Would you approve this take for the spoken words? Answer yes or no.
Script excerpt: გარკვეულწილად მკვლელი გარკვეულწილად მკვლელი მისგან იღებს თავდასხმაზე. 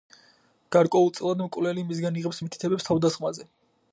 no